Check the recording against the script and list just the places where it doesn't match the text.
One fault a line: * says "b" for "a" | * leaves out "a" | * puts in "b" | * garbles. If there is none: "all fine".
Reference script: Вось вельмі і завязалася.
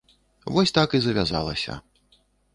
* says "так" for "вельмі"